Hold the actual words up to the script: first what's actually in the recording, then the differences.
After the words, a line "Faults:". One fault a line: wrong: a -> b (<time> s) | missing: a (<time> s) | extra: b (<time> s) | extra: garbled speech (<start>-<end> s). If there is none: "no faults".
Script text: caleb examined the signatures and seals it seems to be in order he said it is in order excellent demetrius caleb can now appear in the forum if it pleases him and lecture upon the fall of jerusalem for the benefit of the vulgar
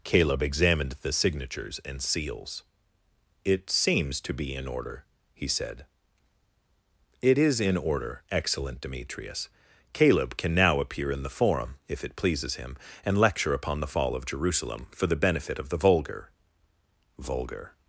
caleb examined the signatures and seals it seems to be in order he said it is in order excellent demetrius caleb can now appear in the forum if it pleases him and lecture upon the fall of jerusalem for the benefit of the vulgar vulgar
Faults:
extra: vulgar (17.2 s)